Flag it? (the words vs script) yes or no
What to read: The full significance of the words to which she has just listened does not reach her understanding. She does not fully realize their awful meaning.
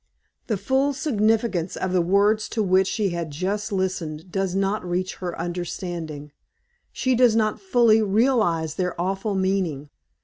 no